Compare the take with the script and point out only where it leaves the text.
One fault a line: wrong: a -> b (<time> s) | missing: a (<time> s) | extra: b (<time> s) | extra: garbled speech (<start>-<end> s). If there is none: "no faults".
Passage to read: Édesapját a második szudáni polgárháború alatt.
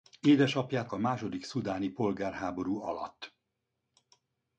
no faults